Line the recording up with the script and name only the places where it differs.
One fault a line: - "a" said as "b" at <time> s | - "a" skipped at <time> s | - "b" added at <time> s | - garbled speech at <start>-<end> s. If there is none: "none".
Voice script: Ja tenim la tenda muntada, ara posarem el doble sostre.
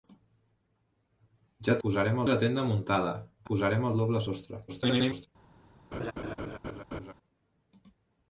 - "tenim" said as "posarem" at 1.9 s
- "ara" skipped at 3.1 s
- garbled speech at 4.7-5.3 s